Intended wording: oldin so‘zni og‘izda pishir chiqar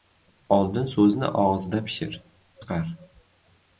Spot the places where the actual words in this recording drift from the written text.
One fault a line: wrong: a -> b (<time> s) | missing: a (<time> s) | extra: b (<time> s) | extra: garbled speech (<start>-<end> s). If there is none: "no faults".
no faults